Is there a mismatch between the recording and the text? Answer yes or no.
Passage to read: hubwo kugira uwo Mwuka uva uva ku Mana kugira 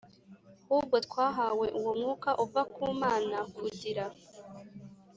yes